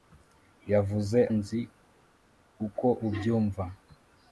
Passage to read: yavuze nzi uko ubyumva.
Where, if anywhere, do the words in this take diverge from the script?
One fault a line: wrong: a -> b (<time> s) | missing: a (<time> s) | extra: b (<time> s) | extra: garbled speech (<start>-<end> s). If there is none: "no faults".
no faults